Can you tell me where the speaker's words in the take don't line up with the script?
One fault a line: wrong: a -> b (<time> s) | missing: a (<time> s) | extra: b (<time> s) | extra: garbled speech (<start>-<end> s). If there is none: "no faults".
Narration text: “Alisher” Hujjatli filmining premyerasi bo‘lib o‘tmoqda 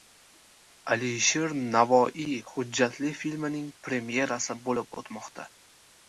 extra: Navoiy (1.8 s)